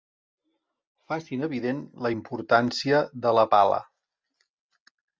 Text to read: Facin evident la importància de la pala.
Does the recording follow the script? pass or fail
pass